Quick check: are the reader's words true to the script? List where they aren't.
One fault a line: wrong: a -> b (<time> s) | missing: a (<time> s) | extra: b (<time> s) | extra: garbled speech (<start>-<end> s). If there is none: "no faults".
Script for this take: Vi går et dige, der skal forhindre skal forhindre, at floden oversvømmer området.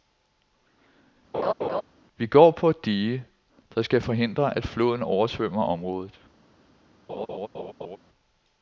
extra: på (2.5 s)
missing: skal forhindre (4.6 s)